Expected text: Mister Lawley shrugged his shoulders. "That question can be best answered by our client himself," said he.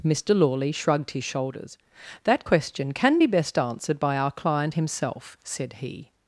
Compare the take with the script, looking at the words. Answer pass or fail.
pass